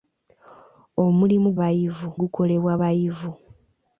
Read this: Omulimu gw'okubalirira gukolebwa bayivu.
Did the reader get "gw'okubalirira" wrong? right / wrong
wrong